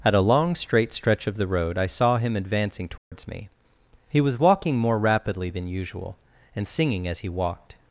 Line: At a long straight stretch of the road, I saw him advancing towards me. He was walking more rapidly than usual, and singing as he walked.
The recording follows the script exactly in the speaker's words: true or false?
true